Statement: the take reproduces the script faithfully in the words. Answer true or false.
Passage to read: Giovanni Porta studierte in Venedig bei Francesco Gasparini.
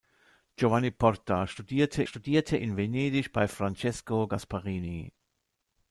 false